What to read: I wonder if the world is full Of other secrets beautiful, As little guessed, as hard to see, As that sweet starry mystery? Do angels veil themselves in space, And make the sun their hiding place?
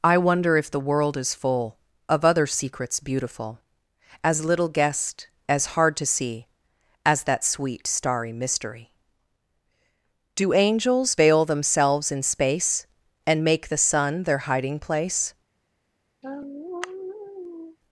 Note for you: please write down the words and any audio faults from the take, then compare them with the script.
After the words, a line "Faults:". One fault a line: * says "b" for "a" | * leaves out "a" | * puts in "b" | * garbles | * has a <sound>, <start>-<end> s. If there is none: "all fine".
I wonder if the world is full Of other secrets beautiful, As little guessed, as hard to see, As that sweet starry mystery? Do angels veil themselves in space, And make the sun their hiding place?
Faults:
* has a sigh, 16.2-17.8 s